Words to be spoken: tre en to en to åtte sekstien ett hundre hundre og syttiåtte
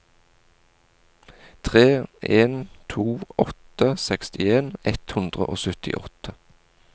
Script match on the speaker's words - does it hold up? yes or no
no